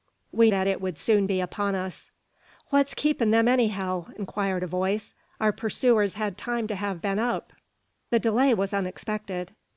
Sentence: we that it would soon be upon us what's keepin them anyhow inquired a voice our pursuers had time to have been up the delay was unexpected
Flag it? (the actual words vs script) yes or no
no